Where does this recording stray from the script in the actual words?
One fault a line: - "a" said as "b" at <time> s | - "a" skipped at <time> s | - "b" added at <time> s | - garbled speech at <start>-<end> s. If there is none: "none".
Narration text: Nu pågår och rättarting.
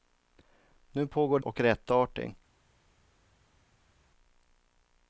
none